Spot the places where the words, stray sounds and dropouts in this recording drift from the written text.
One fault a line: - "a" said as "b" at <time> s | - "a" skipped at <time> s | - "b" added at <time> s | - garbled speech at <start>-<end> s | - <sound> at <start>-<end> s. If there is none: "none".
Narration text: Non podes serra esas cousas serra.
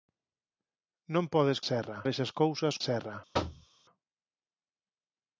- thud at 3.3-3.7 s